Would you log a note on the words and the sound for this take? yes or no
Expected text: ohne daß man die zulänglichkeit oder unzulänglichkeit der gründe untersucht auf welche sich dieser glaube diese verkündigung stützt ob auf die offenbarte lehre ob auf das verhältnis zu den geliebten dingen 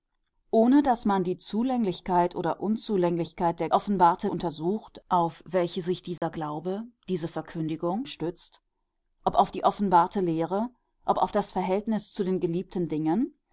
yes